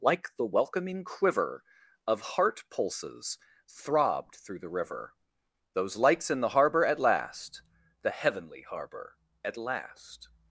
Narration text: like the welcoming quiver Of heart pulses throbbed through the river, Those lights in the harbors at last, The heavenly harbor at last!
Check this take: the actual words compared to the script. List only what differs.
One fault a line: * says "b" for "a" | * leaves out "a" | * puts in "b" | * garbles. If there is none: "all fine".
* says "harbor" for "harbors"